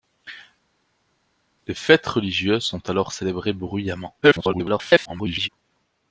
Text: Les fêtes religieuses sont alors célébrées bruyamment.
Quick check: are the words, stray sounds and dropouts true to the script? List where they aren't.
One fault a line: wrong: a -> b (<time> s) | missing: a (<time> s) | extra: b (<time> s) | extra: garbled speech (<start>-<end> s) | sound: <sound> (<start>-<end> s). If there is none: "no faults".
extra: garbled speech (4.2-5.5 s)